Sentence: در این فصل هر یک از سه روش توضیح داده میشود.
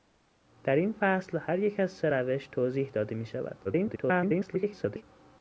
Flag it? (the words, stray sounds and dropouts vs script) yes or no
yes